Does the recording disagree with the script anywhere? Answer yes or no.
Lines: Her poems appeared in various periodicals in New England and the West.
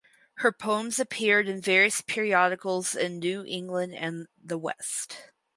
no